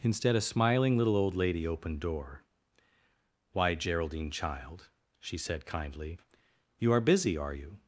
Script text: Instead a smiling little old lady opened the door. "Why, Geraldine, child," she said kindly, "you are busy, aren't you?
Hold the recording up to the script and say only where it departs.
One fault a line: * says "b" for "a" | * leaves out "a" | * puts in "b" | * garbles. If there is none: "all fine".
* leaves out "the"
* says "are" for "aren't"